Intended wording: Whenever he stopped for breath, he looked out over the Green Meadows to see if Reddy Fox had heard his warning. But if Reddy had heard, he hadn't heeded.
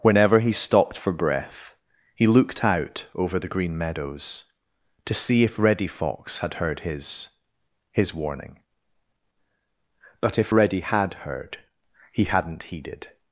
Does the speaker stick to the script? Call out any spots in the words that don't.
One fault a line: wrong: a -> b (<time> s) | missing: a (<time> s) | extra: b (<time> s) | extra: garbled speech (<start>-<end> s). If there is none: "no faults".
extra: his (7.9 s)